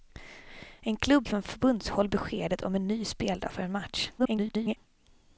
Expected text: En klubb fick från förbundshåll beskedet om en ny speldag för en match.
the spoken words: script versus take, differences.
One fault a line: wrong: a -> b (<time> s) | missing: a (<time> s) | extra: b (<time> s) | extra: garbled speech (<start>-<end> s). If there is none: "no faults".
missing: fick (1.3 s)
extra: garbled speech (4.2-4.8 s)